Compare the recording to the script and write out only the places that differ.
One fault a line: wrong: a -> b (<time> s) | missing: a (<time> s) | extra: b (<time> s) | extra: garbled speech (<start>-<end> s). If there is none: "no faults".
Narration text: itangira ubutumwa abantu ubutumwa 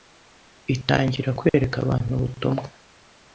wrong: ubutumwa -> kwereka (1.4 s)